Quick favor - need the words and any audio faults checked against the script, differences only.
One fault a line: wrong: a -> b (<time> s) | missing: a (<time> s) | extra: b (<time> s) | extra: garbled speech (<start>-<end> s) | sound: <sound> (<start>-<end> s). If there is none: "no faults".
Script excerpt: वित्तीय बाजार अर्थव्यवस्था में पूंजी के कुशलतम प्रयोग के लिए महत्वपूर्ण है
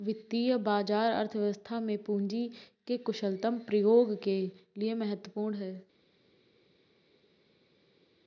no faults